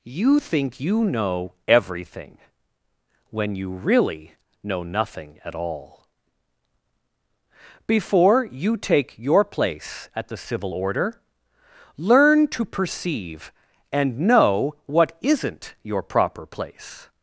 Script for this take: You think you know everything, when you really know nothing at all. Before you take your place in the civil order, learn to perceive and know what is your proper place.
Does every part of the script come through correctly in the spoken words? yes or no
no